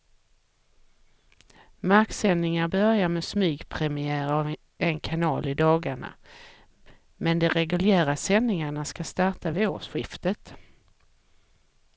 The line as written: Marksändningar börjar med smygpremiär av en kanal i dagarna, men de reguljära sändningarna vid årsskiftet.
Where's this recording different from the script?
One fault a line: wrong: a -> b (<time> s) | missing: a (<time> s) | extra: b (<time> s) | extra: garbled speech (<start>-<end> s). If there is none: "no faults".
extra: ska starta (8.9 s)